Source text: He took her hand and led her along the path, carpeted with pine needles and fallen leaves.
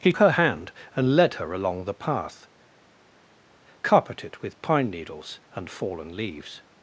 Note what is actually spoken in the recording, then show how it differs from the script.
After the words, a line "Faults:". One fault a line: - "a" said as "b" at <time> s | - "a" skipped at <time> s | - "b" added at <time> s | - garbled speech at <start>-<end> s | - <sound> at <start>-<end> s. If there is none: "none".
He her hand and led her along the path, carpeted with pine needles and fallen leaves.
Faults:
- "took" skipped at 0.1 s